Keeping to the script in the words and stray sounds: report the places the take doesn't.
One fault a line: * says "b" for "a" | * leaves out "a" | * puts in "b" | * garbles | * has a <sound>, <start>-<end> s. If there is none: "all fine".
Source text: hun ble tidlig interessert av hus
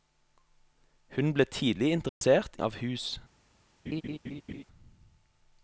* has a dropout, 2.1-2.2 s
* has a laugh, 3.9-4.6 s